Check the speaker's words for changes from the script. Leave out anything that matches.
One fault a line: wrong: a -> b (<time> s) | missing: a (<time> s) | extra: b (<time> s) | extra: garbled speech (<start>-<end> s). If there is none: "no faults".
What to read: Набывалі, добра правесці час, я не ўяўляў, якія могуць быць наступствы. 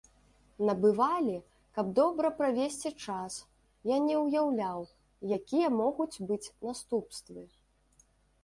extra: каб (1.8 s)